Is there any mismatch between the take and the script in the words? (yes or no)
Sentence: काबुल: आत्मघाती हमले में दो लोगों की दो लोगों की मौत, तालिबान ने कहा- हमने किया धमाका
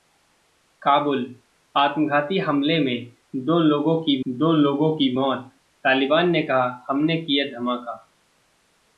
no